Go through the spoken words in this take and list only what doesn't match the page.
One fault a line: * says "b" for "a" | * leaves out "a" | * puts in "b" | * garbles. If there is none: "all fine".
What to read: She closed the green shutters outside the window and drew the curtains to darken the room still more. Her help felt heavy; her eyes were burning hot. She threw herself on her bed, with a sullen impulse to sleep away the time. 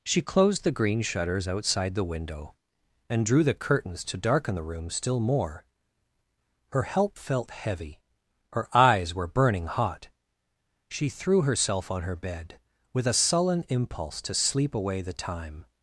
all fine